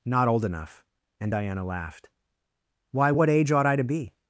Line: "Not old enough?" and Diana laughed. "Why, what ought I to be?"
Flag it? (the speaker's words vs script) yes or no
yes